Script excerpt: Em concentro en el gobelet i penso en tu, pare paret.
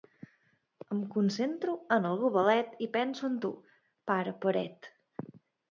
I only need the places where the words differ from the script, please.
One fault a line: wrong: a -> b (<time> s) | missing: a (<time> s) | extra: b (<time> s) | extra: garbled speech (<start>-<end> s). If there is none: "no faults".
no faults